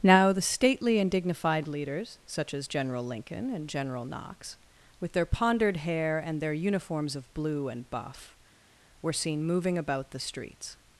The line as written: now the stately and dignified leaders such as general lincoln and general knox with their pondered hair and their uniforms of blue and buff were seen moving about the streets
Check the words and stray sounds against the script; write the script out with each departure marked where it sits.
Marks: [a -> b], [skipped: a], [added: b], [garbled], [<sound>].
now the stately and dignified leaders such as general lincoln and general knox with their pondered hair and their uniforms of blue and buff were seen moving about the streets